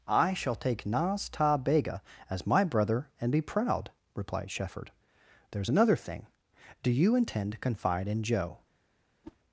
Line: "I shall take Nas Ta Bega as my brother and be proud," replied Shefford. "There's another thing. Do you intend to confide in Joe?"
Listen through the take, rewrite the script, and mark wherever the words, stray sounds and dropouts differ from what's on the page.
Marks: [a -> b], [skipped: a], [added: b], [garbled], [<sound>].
"I shall take Nas Ta Bega as my brother and be proud," replied Shefford. "There's another thing. Do you intend to confide in Joe?" [whoosh]